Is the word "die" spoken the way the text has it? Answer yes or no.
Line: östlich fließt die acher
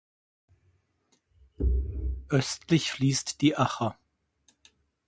yes